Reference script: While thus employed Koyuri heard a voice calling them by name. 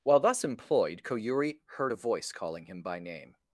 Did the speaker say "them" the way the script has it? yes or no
no